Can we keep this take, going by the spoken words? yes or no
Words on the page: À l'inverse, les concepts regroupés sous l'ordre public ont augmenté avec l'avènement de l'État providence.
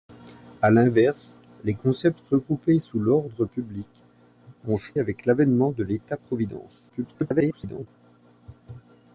no